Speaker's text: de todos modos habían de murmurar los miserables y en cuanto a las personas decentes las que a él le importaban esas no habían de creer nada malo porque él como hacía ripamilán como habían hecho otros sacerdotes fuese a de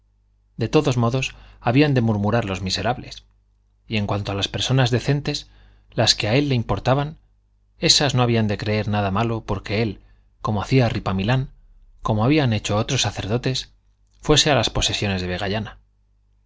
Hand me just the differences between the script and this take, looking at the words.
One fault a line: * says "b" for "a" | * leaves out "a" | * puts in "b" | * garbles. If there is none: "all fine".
* puts in "las posesiones"